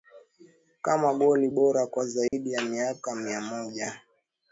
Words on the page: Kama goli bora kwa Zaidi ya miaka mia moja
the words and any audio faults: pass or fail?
fail